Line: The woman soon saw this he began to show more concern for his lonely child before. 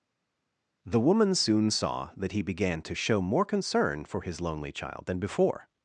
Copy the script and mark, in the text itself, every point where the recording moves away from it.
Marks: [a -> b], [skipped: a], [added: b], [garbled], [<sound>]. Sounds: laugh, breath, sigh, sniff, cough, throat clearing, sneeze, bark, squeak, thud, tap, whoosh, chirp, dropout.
The woman soon saw [this -> that] he began to show more concern for his lonely child [added: than] before.